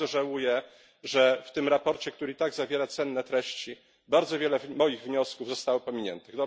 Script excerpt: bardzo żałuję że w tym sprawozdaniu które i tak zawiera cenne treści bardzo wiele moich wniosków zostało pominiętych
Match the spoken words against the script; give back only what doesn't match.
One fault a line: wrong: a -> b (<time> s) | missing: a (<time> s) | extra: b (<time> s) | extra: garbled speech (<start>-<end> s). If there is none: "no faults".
no faults